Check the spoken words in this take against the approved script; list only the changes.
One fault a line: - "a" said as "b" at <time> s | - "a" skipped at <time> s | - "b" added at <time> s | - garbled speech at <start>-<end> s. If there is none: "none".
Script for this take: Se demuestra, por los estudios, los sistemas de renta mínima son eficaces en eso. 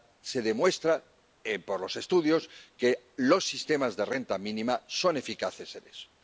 - "que" added at 2.8 s